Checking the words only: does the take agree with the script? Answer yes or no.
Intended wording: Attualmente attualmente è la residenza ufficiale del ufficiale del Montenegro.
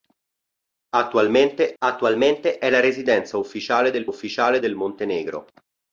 yes